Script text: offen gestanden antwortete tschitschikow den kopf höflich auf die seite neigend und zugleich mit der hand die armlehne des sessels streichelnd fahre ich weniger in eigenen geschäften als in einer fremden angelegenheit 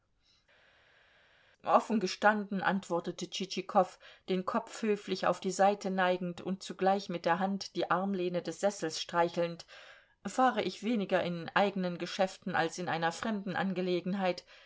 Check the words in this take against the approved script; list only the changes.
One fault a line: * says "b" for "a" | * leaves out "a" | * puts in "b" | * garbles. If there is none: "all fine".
all fine